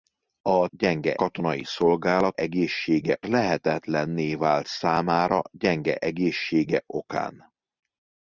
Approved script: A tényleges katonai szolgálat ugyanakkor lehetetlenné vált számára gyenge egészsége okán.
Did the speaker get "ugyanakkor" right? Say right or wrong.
wrong